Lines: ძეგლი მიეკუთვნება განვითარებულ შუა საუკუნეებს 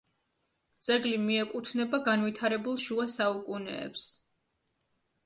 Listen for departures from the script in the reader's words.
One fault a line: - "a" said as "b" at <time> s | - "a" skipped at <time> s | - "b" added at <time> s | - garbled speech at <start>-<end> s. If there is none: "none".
none